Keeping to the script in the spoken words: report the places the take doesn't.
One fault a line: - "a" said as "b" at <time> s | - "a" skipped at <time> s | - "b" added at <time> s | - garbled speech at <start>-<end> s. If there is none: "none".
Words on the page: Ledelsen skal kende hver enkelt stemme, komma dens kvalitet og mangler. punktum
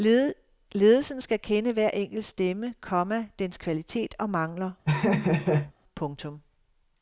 none